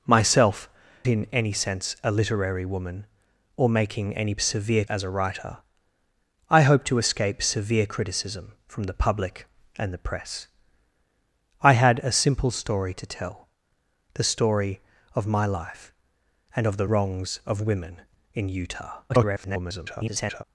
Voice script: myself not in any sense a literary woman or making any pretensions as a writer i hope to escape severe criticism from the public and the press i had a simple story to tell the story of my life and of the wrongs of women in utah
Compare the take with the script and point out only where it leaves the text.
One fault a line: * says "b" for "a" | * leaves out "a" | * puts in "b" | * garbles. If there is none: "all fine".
* leaves out "not"
* says "severe" for "pretensions"
* garbles